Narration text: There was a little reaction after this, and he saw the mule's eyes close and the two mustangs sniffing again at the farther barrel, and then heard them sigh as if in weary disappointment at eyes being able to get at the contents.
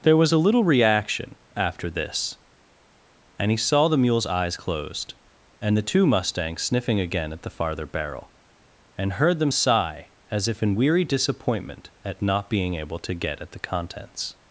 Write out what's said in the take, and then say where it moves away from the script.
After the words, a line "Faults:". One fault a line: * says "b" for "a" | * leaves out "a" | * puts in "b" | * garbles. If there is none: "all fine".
There was a little reaction after this, and he saw the mule's eyes closed and the two mustangs sniffing again at the farther barrel, and heard them sigh as if in weary disappointment at not being able to get at the contents.
Faults:
* says "closed" for "close"
* leaves out "then"
* says "not" for "eyes"